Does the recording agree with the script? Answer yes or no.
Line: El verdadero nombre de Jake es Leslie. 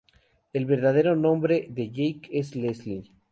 yes